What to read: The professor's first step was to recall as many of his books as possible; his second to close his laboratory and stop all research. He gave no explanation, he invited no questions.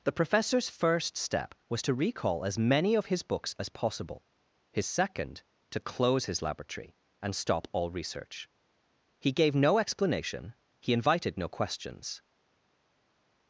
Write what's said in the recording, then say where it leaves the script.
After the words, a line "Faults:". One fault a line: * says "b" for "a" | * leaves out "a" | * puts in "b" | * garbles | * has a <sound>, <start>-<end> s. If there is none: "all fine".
The professor's first step was to recall as many of his books as possible; his second to close his laboratory and stop all research. He gave no explanation, he invited no questions.
Faults:
all fine